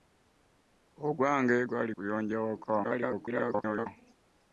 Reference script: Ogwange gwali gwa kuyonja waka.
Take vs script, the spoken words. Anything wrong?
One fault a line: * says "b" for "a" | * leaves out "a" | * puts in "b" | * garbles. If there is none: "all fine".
* leaves out "gwa"
* garbles